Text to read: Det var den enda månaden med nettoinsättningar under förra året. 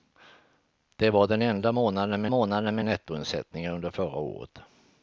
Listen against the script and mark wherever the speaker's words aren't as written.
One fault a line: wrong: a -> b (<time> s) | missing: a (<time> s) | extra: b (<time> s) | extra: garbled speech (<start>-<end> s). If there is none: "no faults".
extra: månaden med (2.3 s)